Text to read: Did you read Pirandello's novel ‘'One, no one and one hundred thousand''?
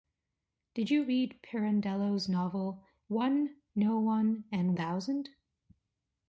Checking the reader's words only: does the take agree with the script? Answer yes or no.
no